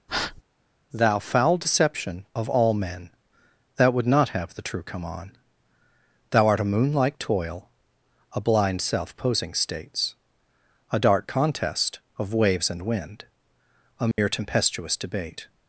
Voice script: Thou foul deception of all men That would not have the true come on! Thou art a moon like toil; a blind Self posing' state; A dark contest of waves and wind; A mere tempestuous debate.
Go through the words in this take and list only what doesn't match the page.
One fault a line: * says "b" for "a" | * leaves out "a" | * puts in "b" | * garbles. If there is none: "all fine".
* says "states" for "state"